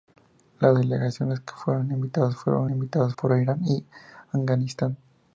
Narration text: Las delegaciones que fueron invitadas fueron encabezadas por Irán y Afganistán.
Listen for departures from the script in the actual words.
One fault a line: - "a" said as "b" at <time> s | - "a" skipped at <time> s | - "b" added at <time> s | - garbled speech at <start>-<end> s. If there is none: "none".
- "encabezadas" said as "invitadas" at 2.7 s